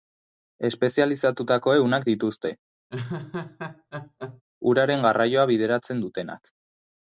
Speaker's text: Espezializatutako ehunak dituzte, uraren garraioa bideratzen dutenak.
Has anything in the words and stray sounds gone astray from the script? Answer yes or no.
yes